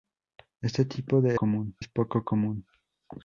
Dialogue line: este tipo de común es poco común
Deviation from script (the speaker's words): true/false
false